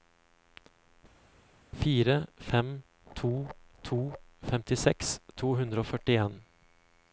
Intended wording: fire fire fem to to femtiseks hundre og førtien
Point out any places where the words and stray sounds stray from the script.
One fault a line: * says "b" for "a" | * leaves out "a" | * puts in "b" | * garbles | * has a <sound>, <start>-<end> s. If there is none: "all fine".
* leaves out "fire"
* puts in "to"